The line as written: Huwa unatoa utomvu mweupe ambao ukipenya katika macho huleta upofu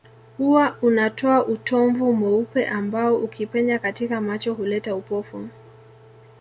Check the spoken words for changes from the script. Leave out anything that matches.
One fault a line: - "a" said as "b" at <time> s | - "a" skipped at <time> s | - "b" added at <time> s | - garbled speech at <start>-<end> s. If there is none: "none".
none